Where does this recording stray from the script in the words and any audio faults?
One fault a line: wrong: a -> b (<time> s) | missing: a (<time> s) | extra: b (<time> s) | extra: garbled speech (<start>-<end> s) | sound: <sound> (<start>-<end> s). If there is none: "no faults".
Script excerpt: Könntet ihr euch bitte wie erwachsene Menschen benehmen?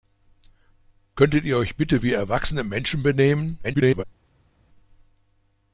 extra: garbled speech (3.6-4.0 s)